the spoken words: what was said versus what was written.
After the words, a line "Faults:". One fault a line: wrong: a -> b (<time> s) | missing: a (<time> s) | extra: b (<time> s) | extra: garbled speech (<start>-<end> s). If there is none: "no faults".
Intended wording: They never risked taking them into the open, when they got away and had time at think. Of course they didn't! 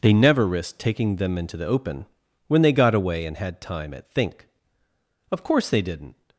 They never risked taking them into the open, when they got away and had time at think. Of course they didn't!
Faults:
no faults